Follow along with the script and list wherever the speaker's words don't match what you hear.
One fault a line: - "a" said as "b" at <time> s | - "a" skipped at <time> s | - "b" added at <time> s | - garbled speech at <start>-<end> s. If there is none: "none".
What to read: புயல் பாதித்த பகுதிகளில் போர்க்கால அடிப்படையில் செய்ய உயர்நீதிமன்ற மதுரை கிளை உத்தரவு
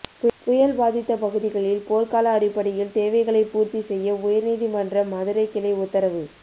- "தேவைகளை பூர்த்தி" added at 3.0 s